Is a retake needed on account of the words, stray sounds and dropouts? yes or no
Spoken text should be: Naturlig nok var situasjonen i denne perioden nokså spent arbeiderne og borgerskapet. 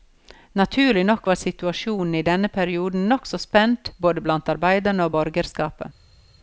yes